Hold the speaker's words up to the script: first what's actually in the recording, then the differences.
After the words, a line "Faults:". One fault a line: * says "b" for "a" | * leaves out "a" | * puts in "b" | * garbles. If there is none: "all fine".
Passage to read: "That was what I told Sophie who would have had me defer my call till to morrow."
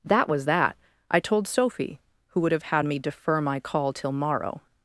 "That was that I told Sophie who would have had me defer my call till morrow."
Faults:
* says "that" for "what"
* leaves out "to"